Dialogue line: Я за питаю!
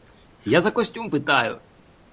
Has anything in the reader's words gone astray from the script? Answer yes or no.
yes